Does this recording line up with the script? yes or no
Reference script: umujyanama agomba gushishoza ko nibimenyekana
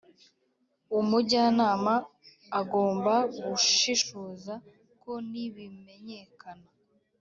yes